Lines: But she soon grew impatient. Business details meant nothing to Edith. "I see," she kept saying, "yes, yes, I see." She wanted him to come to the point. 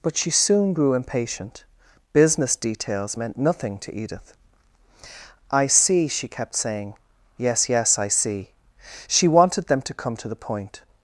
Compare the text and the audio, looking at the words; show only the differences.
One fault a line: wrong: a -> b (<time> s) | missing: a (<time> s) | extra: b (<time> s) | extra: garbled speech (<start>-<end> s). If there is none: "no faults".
wrong: him -> them (9.7 s)